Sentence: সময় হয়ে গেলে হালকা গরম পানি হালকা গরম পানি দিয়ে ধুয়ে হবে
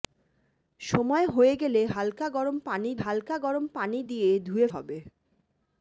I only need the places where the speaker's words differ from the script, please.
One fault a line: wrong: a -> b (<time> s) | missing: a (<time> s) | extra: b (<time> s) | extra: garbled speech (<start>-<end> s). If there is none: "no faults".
no faults